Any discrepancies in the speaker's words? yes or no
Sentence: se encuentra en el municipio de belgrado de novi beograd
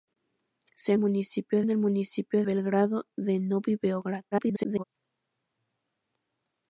yes